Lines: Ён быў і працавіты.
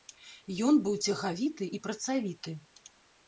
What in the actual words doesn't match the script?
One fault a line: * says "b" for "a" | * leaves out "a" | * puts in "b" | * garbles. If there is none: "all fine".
* puts in "цягавіты"